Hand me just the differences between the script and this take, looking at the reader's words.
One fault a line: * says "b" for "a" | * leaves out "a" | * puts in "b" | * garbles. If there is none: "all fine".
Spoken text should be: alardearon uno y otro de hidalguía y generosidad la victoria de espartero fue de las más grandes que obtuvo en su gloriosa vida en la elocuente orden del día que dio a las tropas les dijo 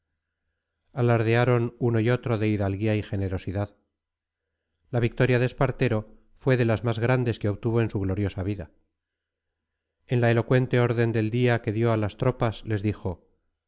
all fine